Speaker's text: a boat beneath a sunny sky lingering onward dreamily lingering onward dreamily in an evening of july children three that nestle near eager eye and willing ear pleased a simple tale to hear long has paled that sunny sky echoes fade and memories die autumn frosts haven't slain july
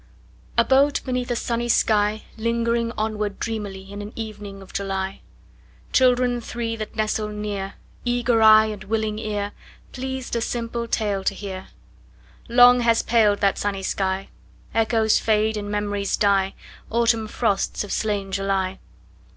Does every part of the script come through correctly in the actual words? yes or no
no